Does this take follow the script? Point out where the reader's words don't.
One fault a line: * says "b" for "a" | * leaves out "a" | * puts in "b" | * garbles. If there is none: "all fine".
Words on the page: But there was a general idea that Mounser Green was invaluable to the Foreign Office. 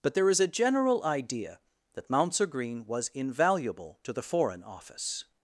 * says "is" for "was"